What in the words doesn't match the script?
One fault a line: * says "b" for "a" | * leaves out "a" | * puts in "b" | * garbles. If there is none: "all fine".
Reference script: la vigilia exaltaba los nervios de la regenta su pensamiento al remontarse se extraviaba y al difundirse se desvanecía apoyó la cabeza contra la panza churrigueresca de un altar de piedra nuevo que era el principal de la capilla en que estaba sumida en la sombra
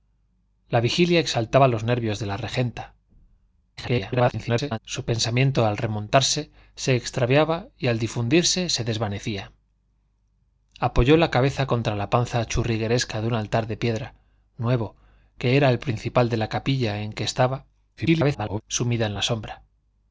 * garbles
* garbles